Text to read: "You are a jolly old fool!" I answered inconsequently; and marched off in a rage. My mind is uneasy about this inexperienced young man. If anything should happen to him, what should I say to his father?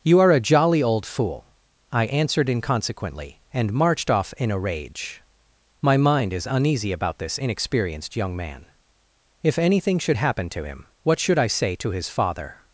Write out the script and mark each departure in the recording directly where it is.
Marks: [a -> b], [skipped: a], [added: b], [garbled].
"You are a jolly old fool!" I answered inconsequently; and marched off in a rage. My mind is uneasy about this inexperienced young man. If anything should happen to him, what should I say to his father?